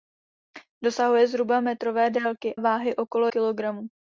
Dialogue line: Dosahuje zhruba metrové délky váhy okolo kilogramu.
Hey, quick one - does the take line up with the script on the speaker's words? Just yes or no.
yes